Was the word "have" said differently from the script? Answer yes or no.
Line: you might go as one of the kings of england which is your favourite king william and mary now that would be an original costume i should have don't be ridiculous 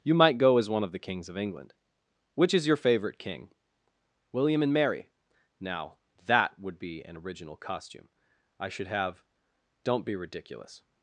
no